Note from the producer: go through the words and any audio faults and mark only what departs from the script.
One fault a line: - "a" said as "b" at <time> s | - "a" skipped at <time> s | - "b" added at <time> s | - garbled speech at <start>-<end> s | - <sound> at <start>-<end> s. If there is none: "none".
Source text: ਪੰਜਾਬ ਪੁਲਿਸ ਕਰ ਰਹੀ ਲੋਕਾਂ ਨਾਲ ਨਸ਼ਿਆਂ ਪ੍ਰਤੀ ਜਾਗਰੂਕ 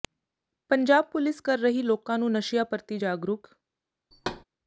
- "ਨਾਲ" said as "ਨੂੰ" at 2.2 s
- thud at 4.1-4.4 s